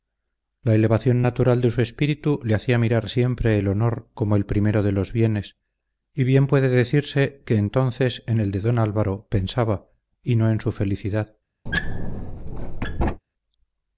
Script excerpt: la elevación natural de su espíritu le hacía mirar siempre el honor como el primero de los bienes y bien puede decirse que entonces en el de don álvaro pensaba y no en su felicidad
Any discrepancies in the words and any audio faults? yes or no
yes